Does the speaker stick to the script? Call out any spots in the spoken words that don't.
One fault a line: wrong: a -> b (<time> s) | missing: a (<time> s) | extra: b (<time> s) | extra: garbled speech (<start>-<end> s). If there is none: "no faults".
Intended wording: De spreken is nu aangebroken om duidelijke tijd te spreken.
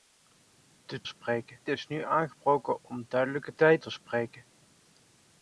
no faults